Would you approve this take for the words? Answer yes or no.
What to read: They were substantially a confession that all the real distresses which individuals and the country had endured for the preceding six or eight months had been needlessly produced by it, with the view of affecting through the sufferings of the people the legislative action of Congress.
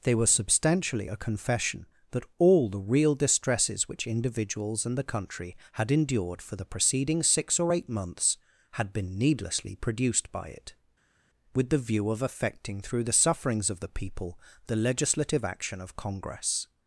yes